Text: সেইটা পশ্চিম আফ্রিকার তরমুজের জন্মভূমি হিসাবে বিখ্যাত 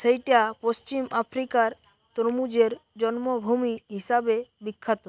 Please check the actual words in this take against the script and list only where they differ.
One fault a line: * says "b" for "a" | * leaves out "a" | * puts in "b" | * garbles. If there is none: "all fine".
all fine